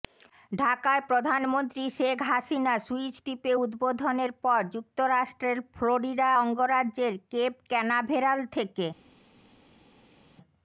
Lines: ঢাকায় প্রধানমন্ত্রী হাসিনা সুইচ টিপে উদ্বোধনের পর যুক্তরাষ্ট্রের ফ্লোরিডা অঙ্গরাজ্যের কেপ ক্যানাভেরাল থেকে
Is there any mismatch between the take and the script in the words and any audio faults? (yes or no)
yes